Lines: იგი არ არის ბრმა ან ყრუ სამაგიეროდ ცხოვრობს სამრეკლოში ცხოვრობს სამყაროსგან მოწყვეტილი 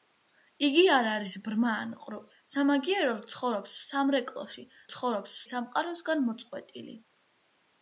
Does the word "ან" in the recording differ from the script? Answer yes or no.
no